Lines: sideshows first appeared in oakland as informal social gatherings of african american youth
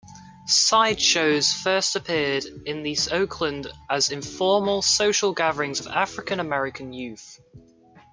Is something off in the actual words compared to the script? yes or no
no